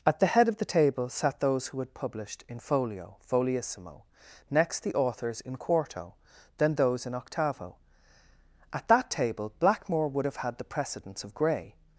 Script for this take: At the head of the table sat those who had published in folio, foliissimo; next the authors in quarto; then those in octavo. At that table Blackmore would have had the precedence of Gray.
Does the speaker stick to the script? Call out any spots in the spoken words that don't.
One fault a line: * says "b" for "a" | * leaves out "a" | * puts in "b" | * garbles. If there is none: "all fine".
all fine